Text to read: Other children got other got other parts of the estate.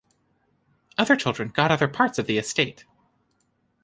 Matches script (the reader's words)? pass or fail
fail